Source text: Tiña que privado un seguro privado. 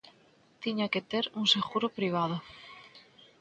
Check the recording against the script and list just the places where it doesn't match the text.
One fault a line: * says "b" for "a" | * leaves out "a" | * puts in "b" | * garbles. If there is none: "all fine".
* says "ter" for "privado"